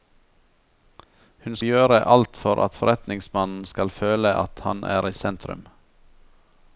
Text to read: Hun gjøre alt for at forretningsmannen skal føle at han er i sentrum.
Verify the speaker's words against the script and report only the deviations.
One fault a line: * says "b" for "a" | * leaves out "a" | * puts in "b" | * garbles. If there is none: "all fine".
all fine